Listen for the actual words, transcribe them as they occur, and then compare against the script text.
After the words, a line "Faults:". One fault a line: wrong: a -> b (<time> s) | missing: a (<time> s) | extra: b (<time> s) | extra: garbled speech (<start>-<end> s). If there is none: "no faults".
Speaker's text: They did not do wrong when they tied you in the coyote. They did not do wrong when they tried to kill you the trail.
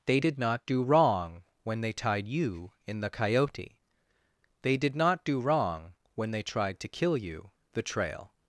They did not do wrong when they tied you in the coyote. They did not do wrong when they tried to kill you the trail.
Faults:
no faults